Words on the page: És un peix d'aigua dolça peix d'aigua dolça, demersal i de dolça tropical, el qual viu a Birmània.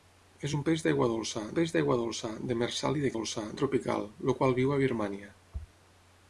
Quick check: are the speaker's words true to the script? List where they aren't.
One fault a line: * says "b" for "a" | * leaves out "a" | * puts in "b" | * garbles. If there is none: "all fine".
all fine